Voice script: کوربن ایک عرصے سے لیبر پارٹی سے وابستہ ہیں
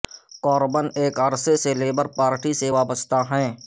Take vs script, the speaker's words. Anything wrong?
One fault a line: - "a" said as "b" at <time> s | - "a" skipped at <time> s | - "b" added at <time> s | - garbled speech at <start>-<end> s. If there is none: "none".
none